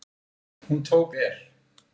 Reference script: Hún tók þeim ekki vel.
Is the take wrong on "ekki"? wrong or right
wrong